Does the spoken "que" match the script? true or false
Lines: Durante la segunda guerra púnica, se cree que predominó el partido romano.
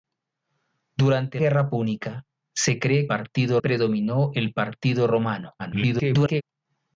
false